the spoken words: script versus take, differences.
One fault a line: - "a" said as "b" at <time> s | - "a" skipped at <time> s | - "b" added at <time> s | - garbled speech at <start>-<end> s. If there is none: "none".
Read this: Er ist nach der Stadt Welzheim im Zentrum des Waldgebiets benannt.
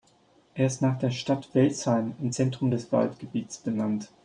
none